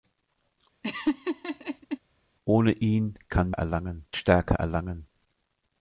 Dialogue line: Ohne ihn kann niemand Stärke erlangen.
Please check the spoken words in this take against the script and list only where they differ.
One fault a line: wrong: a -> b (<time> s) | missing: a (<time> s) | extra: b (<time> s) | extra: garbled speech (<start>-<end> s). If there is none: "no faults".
wrong: niemand -> erlangen (3.5 s)